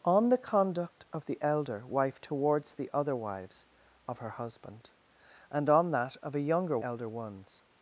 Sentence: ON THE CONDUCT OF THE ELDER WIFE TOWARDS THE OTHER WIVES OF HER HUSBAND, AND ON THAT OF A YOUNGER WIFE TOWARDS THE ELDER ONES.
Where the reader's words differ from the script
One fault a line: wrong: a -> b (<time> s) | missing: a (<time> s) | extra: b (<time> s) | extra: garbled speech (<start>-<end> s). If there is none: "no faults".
missing: WIFE TOWARDS THE (6.8 s)